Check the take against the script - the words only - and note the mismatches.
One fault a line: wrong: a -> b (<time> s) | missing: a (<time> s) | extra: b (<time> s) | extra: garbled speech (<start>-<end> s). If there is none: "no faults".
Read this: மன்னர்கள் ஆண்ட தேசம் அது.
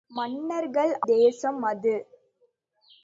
missing: ஆண்ட (0.9 s)